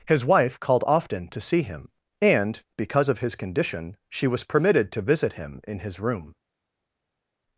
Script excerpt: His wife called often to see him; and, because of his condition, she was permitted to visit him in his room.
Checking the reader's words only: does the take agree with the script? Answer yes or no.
yes